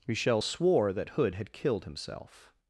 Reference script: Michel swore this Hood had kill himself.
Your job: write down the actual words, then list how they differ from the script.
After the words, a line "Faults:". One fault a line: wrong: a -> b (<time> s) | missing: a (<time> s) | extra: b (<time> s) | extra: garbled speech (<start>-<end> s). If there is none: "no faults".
Michel swore that Hood had killed himself.
Faults:
wrong: this -> that (0.9 s)
wrong: kill -> killed (1.5 s)